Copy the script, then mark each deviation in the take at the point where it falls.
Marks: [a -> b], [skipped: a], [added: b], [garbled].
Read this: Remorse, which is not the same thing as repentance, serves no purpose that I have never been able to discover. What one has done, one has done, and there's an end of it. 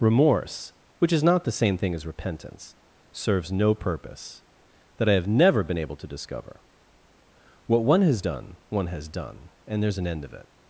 Remorse, which is not the same thing as repentance, serves no purpose that I have never been able to discover. What one has done, one has done, and there's an end of it.